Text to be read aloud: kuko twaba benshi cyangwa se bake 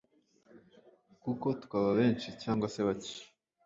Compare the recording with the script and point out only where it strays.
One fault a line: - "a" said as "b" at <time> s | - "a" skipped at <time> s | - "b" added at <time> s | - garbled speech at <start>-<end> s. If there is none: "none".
none